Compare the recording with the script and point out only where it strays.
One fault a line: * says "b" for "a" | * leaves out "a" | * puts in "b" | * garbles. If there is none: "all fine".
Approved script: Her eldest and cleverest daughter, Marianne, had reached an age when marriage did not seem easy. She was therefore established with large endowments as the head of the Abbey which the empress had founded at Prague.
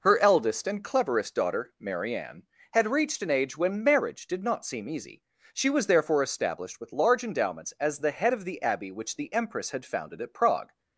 all fine